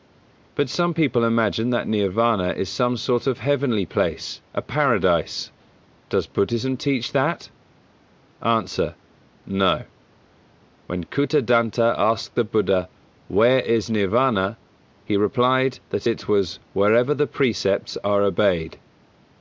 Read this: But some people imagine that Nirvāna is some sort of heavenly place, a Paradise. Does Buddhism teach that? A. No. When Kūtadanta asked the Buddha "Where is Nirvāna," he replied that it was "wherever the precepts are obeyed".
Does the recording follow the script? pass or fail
pass